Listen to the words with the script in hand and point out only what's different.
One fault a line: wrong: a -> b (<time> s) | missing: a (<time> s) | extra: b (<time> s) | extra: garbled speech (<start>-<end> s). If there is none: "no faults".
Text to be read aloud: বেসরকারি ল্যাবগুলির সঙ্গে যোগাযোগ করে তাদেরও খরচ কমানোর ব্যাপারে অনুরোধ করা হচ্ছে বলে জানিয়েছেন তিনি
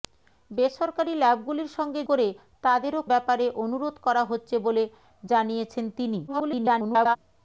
missing: যোগাযোগ (2.0 s)
missing: খরচ কমানোর (3.0 s)
extra: garbled speech (6.3-7.2 s)